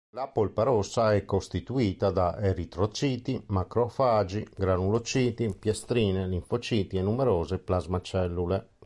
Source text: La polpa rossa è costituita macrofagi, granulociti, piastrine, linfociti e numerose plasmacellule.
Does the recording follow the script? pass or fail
fail